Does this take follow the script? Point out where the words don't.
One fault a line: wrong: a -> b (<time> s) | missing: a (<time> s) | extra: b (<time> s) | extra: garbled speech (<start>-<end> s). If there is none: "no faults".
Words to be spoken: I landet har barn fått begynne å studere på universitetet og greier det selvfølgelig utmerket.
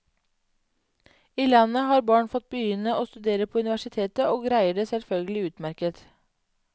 no faults